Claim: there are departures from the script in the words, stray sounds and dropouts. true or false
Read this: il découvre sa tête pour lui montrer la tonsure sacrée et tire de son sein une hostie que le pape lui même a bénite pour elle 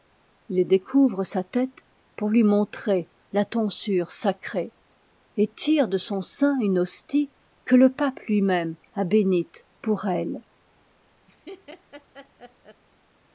true